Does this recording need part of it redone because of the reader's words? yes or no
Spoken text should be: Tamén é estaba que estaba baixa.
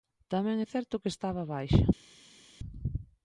yes